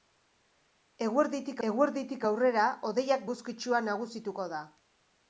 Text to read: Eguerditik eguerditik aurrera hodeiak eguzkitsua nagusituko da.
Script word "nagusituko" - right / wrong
right